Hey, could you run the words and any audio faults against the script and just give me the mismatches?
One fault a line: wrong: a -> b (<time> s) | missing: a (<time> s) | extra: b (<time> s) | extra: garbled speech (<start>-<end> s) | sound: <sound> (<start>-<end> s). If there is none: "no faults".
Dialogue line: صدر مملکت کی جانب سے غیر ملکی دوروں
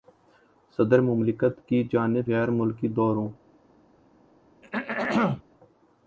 missing: سے (2.3 s)
sound: throat clearing (4.6-5.4 s)